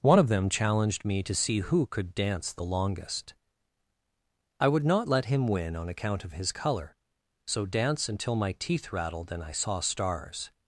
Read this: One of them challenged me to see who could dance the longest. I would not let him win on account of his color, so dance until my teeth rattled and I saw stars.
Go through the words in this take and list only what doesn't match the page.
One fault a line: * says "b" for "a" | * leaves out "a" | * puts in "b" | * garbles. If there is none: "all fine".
all fine